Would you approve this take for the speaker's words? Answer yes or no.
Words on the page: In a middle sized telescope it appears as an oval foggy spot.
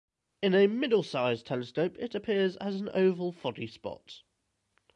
yes